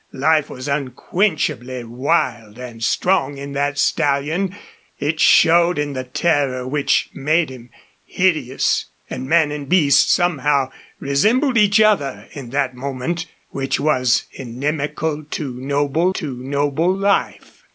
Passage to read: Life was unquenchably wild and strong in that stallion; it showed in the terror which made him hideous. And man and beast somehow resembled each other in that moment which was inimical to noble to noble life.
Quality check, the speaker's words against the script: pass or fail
pass